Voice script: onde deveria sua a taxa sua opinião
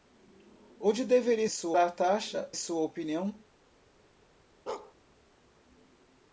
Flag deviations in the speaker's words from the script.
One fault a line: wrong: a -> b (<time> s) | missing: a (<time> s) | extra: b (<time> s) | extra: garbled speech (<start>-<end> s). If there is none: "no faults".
no faults